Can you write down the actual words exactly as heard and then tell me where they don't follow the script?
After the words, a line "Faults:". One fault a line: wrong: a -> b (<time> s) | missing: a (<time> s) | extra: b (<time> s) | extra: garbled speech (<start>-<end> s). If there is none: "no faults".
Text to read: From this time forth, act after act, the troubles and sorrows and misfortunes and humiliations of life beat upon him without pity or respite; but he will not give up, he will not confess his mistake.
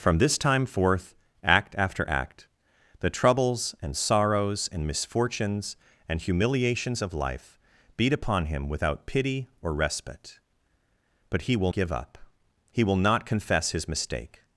From this time forth, act after act, the troubles and sorrows and misfortunes and humiliations of life beat upon him without pity or respite; but he will give up, he will not confess his mistake.
Faults:
missing: not (11.7 s)